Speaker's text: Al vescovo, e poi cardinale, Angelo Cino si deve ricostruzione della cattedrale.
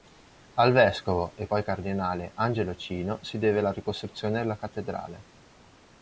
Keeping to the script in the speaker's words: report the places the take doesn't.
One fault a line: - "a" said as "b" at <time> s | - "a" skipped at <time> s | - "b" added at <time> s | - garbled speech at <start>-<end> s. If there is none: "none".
- "la" added at 3.6 s